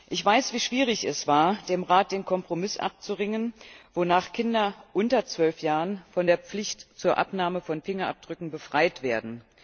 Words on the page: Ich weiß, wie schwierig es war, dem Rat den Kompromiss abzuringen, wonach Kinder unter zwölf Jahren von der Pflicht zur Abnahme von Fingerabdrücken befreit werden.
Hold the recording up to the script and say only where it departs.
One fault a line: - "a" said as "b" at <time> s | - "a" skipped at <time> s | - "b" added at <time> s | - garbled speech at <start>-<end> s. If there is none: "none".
none